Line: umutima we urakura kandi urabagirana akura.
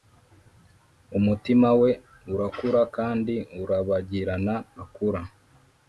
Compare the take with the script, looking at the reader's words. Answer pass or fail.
pass